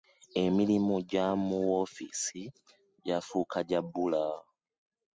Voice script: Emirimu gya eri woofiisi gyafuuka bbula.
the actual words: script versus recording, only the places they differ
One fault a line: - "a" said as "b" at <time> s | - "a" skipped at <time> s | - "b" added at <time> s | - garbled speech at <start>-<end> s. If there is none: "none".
- "eri" said as "mu" at 1.4 s
- "gya" added at 3.7 s